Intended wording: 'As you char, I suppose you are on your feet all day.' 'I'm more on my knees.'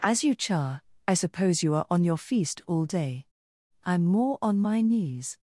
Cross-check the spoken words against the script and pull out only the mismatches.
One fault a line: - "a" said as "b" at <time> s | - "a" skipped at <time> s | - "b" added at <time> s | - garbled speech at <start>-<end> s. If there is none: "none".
- "feet" said as "feast" at 2.2 s